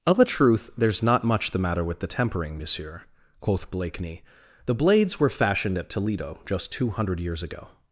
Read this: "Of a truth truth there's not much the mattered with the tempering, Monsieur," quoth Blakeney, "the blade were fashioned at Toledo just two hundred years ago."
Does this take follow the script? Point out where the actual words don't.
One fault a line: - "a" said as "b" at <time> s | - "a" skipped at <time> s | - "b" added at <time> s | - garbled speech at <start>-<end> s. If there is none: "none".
- "truth" skipped at 0.7 s
- "mattered" said as "matter" at 1.6 s
- "blade" said as "blades" at 4.7 s